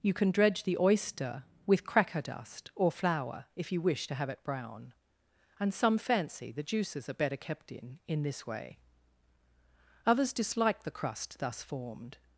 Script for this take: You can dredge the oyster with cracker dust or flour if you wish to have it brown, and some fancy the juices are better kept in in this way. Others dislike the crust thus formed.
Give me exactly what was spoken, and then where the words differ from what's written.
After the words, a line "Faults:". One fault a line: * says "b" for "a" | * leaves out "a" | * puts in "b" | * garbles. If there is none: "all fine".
You can dredge the oyster with cracker dust or flour if you wish to have it brown, and some fancy the juices are better kept in in this way. Others dislike the crust thus formed.
Faults:
all fine